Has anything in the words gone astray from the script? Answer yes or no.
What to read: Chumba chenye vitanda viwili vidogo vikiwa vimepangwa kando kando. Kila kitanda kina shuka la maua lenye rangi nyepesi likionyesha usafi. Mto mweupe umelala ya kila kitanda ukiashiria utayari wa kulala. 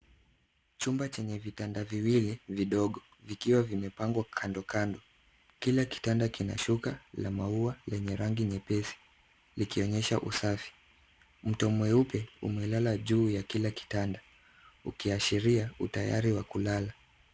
yes